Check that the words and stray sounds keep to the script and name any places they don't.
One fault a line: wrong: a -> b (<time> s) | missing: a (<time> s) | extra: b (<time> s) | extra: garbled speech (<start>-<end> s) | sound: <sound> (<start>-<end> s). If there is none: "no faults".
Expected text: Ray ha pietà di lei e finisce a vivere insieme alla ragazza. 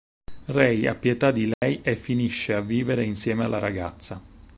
sound: dropout (1.5-1.6 s)